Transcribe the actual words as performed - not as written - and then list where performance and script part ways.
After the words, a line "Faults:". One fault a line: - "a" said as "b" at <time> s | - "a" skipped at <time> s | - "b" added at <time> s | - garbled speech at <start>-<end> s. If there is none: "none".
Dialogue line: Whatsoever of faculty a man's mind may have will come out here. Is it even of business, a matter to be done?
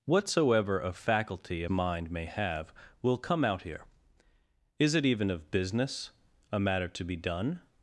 Whatsoever of faculty a mind may have will come out here. Is it even of business, a matter to be done?
Faults:
- "man's" skipped at 1.7 s